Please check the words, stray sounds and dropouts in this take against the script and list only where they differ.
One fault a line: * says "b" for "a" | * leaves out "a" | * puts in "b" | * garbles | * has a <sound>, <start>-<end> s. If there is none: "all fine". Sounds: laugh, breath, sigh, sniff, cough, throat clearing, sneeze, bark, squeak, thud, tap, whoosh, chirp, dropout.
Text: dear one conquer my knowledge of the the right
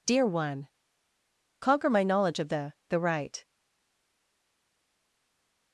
all fine